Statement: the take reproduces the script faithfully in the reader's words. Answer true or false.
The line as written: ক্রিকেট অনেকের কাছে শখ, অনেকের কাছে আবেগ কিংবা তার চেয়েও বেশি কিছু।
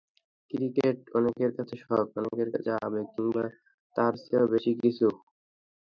true